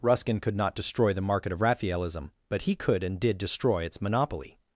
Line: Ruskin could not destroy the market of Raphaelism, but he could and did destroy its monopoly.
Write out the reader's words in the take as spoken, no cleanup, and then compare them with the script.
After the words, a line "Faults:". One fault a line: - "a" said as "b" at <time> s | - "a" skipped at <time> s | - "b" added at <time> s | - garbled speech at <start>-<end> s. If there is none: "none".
Ruskin could not destroy the market of Raphaelism, but he could and did destroy its monopoly.
Faults:
none